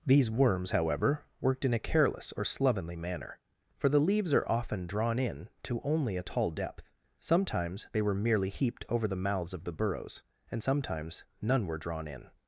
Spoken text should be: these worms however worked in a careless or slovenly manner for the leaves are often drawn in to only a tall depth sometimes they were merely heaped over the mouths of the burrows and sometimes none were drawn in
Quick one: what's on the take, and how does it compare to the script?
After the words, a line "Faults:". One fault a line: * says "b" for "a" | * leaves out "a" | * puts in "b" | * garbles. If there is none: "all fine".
these worms however worked in a careless or slovenly manner for the leaves are often drawn in to only a tall depth sometimes they were merely heaped over the mouths of the burrows and sometimes none were drawn in
Faults:
all fine